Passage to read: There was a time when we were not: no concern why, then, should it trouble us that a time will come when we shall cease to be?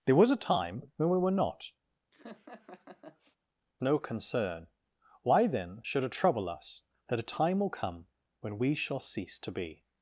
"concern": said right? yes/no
yes